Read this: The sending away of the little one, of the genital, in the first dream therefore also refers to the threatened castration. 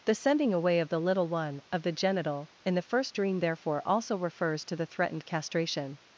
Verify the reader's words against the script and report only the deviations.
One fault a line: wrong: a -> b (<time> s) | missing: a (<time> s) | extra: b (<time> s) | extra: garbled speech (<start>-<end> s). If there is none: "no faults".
no faults